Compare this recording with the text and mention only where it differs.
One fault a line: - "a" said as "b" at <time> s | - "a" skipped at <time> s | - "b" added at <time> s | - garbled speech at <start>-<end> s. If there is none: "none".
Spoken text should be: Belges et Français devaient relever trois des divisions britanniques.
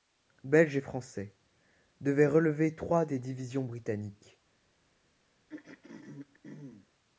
none